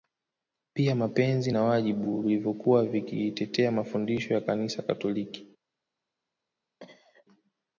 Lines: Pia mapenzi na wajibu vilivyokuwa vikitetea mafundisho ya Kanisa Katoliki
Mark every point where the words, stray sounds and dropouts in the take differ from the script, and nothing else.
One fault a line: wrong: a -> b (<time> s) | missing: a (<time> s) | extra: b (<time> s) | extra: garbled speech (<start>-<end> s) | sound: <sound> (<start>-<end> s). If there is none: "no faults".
sound: cough (6.8-7.3 s)